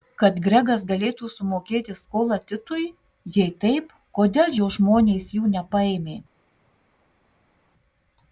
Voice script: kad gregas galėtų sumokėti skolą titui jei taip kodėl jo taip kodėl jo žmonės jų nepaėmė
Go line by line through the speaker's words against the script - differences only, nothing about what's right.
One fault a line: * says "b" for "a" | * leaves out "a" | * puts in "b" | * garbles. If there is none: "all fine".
* leaves out "taip kodėl jo"